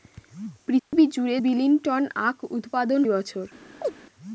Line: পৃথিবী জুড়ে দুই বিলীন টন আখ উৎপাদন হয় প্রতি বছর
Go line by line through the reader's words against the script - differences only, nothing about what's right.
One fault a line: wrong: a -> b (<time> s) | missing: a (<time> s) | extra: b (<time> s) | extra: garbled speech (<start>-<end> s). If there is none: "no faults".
missing: দুই (1.4 s)
missing: হয় প্রতি (3.0 s)